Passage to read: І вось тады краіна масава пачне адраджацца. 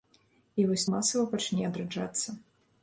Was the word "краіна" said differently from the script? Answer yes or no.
yes